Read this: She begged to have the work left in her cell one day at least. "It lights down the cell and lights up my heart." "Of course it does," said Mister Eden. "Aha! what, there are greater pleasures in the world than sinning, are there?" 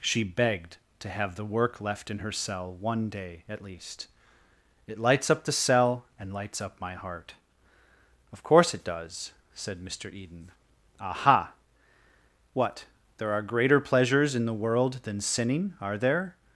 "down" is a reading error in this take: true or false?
true